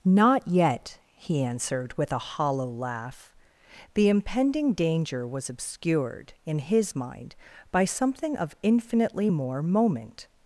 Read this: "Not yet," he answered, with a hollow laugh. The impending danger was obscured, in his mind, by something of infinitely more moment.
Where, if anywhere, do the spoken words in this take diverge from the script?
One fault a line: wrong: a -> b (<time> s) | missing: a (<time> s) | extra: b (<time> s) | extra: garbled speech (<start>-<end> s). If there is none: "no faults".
no faults